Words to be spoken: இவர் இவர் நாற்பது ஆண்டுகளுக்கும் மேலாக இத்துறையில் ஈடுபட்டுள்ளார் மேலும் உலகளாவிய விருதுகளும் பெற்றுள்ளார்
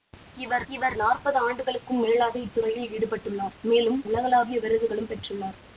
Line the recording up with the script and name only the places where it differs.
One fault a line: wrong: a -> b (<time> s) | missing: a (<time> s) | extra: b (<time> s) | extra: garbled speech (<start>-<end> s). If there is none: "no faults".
no faults